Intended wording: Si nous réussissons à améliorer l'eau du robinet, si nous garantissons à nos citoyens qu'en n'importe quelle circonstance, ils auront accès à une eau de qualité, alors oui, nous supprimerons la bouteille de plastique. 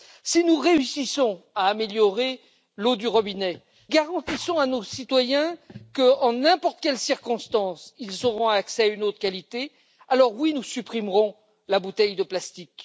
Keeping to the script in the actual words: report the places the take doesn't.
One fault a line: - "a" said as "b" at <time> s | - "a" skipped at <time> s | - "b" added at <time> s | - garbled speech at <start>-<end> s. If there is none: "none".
- "si nous" skipped at 3.6 s